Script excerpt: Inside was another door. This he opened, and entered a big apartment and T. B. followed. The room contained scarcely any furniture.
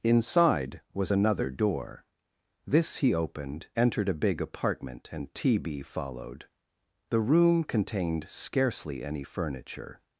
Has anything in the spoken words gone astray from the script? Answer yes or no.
yes